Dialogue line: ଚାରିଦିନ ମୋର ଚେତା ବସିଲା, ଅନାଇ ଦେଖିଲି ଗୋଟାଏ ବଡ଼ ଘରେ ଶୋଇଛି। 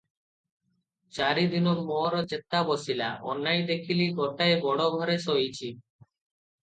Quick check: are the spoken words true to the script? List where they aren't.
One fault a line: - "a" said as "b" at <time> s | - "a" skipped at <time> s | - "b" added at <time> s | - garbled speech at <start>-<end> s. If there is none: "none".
none